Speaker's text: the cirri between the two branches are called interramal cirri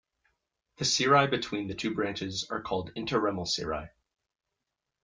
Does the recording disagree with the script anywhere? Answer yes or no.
no